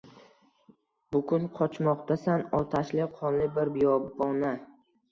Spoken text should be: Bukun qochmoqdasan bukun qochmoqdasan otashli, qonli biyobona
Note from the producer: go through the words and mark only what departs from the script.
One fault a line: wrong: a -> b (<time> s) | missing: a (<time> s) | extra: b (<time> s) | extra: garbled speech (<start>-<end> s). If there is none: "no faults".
missing: bukun qochmoqdasan (2.5 s)
extra: bir (3.6 s)